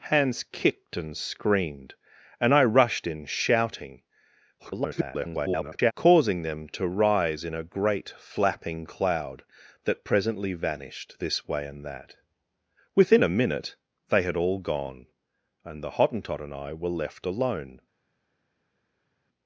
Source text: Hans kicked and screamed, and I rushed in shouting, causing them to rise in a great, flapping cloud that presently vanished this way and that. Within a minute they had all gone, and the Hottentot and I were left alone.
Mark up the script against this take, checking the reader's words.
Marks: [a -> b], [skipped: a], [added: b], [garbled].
Hans kicked and screamed, and I rushed in shouting, [garbled] causing them to rise in a great, flapping cloud that presently vanished this way and that. Within a minute they had all gone, and the Hottentot and I were left alone.